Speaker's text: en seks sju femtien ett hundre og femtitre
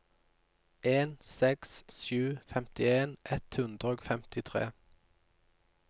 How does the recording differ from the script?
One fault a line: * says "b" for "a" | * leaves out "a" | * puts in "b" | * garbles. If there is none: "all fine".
all fine